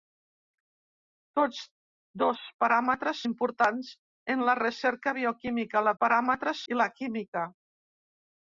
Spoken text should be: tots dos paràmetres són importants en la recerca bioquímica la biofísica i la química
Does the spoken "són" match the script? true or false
false